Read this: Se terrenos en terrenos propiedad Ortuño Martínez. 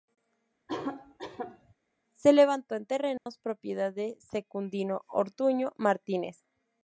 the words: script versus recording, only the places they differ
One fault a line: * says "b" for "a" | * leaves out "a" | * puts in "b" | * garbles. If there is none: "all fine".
* says "levantó" for "terrenos"
* puts in "de Secundino"